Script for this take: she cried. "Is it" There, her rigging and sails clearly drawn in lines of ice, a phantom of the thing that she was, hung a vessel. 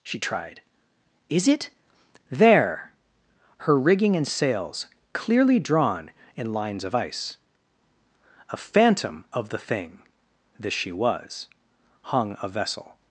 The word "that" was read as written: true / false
false